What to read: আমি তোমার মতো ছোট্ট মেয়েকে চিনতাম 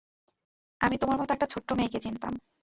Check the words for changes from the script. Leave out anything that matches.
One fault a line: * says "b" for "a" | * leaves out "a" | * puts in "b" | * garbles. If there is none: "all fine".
* puts in "একটা"